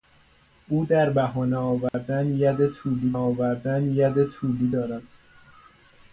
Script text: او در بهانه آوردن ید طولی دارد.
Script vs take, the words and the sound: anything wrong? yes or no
yes